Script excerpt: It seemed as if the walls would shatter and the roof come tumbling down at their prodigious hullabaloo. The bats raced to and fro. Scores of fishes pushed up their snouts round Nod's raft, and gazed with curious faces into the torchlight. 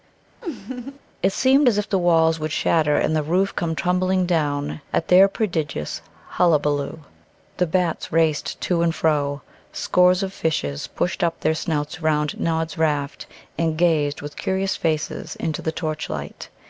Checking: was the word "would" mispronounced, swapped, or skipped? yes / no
no